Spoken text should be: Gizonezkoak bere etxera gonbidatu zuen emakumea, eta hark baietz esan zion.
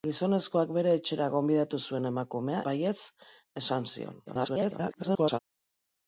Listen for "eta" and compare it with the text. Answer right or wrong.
wrong